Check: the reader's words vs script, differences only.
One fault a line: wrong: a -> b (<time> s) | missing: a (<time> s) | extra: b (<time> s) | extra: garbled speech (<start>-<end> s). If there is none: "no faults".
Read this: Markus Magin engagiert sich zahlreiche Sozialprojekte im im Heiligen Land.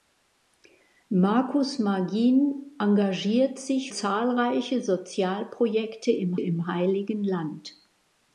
no faults